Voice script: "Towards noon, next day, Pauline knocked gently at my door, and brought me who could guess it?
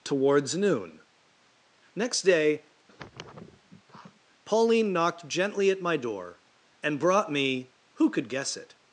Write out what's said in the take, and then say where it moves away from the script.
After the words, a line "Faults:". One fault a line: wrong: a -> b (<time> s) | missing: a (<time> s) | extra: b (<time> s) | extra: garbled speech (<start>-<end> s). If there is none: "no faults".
"Towards noon, next day, Pauline knocked gently at my door, and brought me who could guess it?
Faults:
no faults